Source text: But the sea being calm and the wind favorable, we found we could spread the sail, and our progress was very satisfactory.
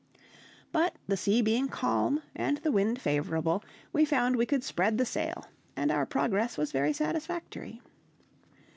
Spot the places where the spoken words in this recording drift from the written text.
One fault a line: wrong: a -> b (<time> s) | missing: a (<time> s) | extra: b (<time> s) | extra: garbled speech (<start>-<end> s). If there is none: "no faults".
no faults